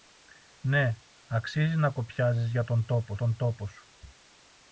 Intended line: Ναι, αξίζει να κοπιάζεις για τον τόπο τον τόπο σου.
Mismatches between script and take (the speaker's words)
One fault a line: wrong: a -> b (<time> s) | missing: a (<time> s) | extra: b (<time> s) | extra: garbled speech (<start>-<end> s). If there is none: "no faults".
no faults